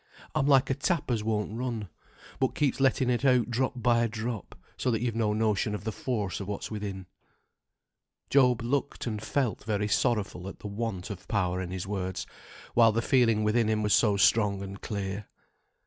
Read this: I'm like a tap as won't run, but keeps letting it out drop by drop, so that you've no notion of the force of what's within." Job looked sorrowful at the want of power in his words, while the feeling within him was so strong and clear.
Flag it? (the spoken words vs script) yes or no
yes